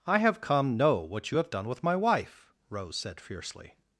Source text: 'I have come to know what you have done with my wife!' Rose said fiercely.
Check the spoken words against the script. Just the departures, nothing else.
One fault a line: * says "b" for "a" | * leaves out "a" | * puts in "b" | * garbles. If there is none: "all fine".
* leaves out "to"